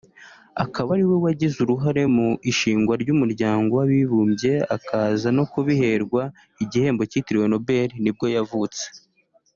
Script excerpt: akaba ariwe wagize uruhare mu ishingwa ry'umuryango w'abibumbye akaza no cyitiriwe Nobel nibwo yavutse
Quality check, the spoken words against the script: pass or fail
fail